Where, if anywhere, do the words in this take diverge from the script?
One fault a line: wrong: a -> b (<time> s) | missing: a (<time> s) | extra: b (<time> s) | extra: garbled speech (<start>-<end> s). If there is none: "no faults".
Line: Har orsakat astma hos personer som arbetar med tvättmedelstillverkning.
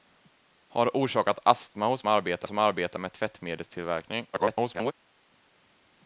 wrong: personer -> arbetar (2.1 s)
extra: garbled speech (4.3-4.9 s)